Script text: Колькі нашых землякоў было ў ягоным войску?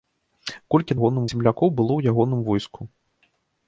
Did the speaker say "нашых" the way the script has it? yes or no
no